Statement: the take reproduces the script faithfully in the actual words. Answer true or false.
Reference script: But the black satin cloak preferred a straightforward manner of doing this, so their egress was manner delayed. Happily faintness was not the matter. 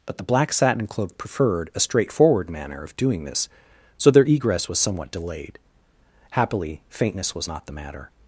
false